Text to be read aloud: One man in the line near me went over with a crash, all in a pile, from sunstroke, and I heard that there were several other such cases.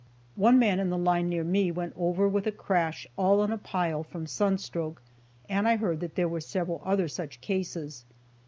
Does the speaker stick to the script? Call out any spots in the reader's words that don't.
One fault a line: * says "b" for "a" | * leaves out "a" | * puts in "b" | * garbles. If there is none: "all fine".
all fine